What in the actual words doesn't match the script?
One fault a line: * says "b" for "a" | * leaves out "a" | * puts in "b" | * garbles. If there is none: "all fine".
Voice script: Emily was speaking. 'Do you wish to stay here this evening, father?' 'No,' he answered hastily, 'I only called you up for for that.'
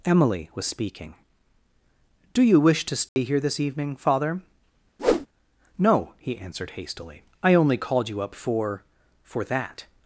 all fine